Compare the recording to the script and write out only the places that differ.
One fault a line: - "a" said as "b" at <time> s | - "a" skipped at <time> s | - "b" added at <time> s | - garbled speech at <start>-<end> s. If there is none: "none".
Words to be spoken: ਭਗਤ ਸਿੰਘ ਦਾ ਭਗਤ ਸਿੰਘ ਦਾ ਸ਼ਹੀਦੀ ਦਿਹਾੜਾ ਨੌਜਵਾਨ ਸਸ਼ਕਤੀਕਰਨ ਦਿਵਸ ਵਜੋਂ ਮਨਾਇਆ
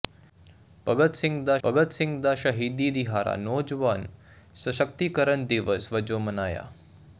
none